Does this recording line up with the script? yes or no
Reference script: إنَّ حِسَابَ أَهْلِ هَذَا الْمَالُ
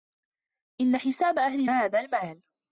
yes